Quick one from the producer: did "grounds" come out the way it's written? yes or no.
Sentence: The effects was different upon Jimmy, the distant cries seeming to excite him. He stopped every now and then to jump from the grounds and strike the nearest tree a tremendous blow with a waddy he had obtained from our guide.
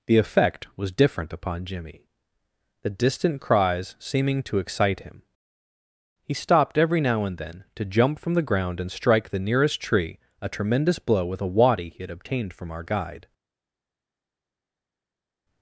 no